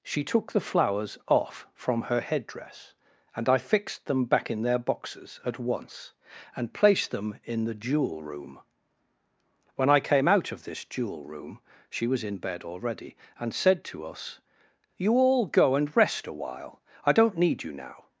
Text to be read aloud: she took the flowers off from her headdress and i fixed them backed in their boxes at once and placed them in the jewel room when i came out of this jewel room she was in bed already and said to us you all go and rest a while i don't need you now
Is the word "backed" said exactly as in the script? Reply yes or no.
no